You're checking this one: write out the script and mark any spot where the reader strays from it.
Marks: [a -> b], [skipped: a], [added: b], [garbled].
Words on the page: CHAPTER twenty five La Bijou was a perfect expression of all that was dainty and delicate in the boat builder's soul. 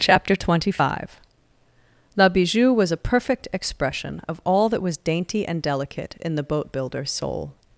CHAPTER twenty five La Bijou was a perfect expression of all that was dainty and delicate in the boat builder's soul.